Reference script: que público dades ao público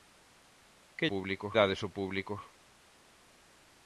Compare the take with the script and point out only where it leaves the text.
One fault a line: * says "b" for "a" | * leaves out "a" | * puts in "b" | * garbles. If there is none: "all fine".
all fine